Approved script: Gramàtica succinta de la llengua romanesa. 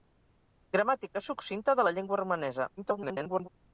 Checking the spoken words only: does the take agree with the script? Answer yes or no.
no